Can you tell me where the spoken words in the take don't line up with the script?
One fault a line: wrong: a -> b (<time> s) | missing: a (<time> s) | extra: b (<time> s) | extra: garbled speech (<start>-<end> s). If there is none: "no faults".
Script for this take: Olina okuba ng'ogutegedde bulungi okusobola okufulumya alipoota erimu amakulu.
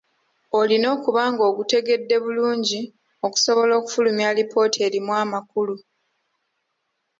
no faults